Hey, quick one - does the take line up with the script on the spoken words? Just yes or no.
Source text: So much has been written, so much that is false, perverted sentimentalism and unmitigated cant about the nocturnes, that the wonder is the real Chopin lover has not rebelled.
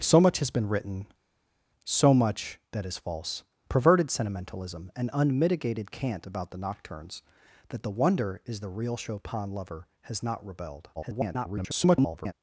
no